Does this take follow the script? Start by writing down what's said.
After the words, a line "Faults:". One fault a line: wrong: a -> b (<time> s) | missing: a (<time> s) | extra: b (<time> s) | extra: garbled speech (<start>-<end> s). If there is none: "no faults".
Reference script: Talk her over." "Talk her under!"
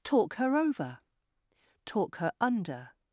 Talk her over." "Talk her under!"
Faults:
no faults